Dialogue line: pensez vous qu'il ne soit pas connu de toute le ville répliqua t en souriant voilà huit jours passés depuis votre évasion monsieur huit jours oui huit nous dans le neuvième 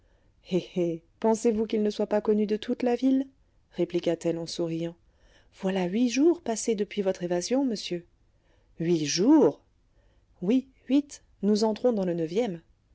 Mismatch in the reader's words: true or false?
true